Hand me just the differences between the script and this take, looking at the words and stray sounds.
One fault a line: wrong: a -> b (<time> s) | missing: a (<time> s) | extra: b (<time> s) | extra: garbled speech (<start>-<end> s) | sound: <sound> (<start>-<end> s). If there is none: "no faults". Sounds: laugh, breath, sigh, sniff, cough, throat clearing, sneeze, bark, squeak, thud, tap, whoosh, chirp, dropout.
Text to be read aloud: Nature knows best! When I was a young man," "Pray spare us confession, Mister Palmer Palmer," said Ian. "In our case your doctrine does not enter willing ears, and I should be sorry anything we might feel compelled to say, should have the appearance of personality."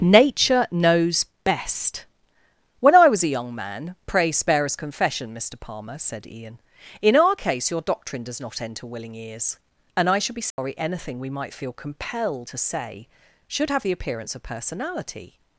missing: Palmer (6.0 s)
sound: dropout (10.5-10.6 s)